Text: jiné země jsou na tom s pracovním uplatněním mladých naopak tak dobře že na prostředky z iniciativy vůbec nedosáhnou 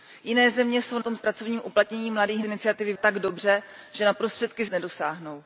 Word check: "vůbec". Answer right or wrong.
wrong